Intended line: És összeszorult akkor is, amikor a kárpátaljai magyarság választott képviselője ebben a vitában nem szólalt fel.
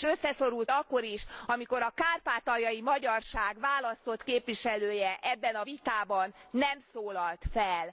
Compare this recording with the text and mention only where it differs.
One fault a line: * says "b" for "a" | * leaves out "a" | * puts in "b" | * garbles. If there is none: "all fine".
all fine